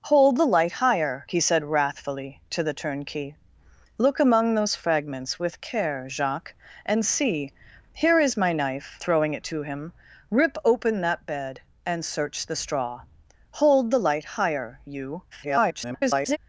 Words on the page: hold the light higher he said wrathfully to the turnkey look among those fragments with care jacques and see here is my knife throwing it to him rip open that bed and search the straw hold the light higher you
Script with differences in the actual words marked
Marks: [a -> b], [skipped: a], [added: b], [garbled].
hold the light higher he said wrathfully to the turnkey look among those fragments with care jacques and see here is my knife throwing it to him rip open that bed and search the straw hold the light higher you [garbled]